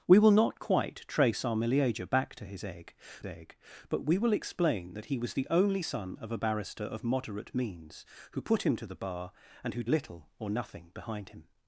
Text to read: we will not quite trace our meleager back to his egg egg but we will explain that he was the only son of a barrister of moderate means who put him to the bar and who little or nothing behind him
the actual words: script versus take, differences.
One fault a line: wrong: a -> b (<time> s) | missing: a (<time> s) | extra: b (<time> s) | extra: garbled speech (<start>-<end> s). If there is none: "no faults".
no faults